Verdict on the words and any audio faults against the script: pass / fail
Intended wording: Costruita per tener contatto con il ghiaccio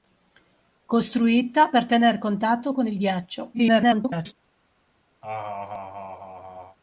fail